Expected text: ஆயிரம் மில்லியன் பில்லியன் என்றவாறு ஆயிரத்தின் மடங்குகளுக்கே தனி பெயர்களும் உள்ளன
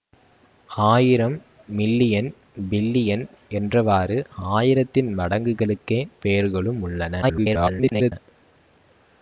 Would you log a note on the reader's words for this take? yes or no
yes